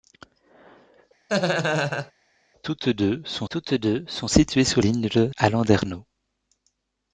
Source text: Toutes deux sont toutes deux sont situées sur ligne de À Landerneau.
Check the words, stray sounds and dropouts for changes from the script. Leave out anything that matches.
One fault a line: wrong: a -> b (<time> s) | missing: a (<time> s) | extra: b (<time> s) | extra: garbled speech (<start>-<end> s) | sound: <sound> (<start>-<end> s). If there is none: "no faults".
sound: laugh (1.3-2.1 s)